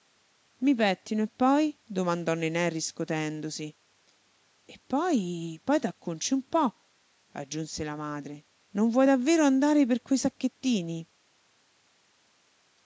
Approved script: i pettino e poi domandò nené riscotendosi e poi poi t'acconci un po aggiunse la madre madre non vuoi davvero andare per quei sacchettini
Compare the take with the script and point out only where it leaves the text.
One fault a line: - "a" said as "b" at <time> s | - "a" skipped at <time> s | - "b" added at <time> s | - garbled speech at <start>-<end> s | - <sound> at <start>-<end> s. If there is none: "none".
- "madre" skipped at 8.4 s